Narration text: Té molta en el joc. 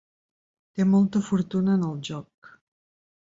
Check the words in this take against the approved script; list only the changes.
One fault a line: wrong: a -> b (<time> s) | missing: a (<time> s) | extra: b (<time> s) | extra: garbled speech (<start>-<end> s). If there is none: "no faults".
extra: fortuna (1.3 s)